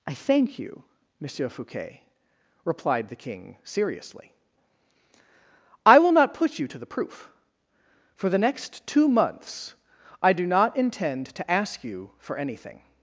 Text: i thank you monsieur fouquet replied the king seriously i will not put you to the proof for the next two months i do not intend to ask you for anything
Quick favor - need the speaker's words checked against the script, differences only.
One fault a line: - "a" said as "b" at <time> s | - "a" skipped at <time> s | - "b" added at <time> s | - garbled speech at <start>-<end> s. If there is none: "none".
none